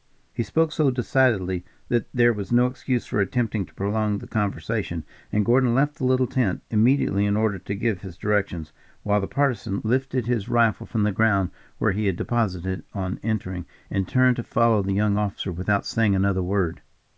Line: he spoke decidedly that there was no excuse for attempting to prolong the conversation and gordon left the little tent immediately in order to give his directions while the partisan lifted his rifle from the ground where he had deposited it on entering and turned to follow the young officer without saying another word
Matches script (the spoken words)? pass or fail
fail